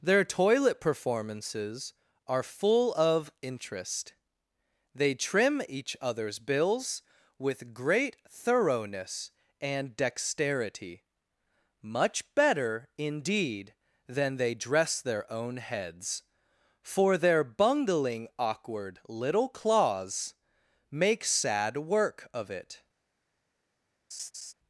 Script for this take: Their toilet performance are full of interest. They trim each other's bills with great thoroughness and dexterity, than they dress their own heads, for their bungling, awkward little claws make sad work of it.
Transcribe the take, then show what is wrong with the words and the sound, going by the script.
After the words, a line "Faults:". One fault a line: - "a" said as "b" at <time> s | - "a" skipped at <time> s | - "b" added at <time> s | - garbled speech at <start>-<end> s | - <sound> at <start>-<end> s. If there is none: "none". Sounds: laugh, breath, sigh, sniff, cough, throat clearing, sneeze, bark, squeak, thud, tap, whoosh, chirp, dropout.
Their toilet performances are full of interest. They trim each other's bills with great thoroughness and dexterity, much better, indeed, than they dress their own heads, for their bungling, awkward little claws make sad work of it.
Faults:
- "performance" said as "performances" at 0.8 s
- "much better indeed" added at 11.8 s
- laugh at 24.1-24.5 s